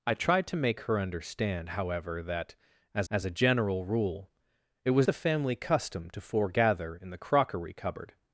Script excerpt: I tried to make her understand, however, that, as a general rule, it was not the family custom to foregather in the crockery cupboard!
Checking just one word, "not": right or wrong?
wrong